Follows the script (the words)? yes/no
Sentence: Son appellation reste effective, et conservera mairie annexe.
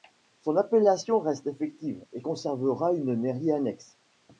no